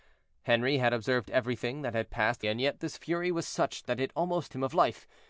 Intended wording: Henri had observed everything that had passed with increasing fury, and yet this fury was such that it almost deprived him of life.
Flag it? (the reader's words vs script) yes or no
yes